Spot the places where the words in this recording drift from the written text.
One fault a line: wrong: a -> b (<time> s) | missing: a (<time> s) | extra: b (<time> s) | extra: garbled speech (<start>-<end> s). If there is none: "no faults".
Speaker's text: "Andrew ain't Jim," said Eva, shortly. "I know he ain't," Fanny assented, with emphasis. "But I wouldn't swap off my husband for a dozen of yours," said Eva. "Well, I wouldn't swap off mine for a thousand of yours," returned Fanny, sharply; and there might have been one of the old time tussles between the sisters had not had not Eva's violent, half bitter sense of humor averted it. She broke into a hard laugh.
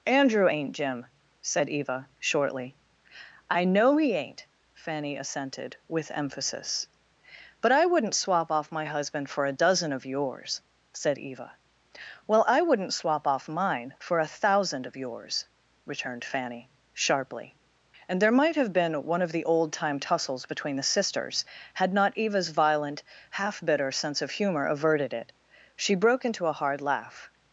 missing: had not (22.2 s)